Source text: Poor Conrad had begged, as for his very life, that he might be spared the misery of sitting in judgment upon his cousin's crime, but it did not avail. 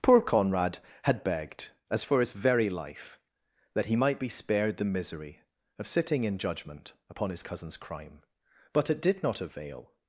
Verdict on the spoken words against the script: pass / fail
pass